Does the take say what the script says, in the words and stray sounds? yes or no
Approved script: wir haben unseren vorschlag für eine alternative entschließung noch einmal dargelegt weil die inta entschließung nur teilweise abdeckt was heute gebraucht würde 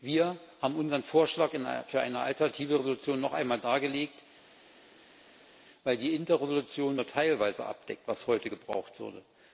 yes